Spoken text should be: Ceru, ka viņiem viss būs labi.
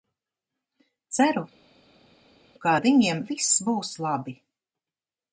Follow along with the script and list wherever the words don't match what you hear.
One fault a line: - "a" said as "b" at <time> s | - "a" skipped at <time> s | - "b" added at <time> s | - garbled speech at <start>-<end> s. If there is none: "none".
- "ar" added at 2.7 s